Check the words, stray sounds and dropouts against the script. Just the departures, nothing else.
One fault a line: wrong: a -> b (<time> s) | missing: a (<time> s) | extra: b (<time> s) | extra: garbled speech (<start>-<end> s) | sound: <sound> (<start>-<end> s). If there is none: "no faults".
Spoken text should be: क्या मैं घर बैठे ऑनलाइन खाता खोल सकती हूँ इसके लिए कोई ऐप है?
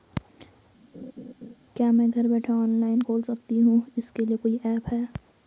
sound: laugh (0.9-1.5 s)
missing: खाता (3.0 s)